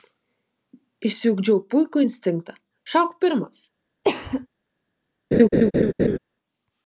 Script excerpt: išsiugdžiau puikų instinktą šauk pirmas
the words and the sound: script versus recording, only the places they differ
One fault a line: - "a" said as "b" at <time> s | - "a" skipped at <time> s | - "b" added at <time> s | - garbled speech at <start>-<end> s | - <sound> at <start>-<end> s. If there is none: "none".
- cough at 4.0-4.5 s
- laugh at 5.3-6.2 s